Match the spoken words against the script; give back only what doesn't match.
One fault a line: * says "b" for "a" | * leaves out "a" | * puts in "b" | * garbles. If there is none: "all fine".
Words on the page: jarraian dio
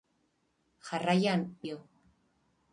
all fine